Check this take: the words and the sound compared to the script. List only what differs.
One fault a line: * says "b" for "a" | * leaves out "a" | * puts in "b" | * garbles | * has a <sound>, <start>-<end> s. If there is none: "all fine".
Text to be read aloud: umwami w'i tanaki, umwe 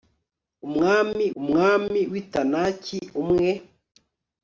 * puts in "umwami"